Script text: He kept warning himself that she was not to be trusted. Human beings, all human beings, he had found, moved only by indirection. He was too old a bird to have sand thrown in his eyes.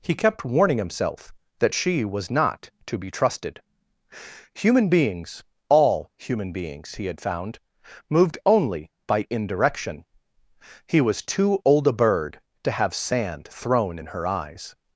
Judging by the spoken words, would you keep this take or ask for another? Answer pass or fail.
fail